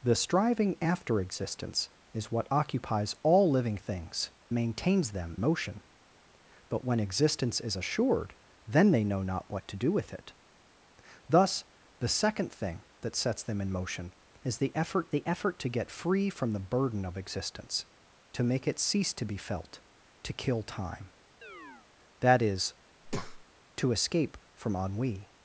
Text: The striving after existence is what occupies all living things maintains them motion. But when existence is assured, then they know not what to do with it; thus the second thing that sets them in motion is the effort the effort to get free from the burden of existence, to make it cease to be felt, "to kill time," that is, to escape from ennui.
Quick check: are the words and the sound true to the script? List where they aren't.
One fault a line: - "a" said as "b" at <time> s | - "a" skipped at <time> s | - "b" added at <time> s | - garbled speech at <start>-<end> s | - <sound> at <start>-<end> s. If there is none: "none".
- chirp at 21.4-21.9 s
- breath at 23.0-23.4 s